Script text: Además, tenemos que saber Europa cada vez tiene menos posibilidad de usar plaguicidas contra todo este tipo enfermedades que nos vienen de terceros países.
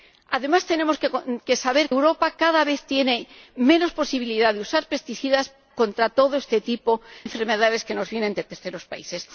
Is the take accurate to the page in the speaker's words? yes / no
yes